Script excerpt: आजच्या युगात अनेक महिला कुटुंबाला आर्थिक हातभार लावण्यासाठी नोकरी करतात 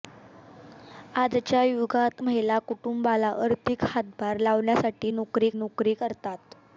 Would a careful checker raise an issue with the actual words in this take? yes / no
yes